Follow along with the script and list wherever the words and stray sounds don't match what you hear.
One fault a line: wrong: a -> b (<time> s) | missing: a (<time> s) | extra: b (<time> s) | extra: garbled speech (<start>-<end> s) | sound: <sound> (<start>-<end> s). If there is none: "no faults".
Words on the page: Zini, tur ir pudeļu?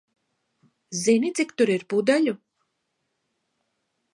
extra: cik (1.4 s)